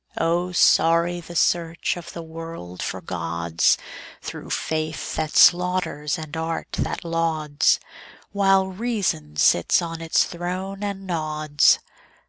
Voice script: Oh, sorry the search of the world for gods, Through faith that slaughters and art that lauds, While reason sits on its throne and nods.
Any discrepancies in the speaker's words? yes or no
no